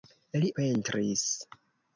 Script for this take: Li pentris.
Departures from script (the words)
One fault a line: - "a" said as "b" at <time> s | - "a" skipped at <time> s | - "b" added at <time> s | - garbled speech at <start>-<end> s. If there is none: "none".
none